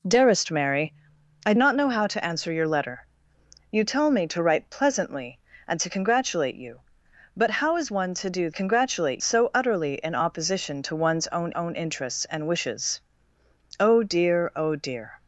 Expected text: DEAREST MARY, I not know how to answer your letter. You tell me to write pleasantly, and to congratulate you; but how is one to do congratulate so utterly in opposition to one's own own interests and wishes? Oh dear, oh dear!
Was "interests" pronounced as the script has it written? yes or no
yes